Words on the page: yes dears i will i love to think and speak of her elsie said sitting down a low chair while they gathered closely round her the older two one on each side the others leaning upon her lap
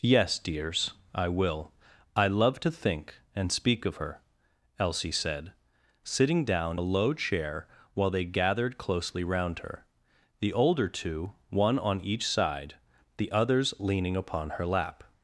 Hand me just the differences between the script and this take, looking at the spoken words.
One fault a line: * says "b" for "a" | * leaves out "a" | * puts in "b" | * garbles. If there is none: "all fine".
all fine